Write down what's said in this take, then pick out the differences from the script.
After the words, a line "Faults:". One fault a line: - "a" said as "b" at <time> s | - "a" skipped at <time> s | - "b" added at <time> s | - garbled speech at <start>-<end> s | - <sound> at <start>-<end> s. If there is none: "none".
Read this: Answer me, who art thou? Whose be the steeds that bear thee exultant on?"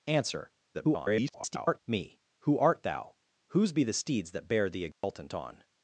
Answer [garbled] me, who art thou? Whose be the steeds that bear thee exultant on?"
Faults:
- garbled speech at 0.7-1.8 s
- dropout at 4.9-5.0 s